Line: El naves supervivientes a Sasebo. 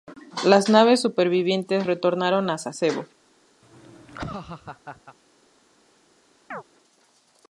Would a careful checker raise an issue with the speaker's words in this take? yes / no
yes